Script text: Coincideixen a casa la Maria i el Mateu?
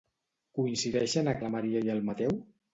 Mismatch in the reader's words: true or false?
true